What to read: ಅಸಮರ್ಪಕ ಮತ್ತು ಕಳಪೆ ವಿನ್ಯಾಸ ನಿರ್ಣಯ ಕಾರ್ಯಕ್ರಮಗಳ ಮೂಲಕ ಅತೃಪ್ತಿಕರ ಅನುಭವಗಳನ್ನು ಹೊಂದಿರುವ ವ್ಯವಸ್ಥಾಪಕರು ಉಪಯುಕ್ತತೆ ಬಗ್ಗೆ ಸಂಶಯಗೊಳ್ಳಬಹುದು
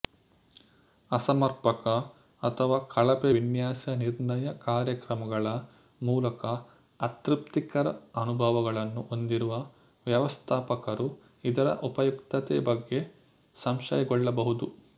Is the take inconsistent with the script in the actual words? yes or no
yes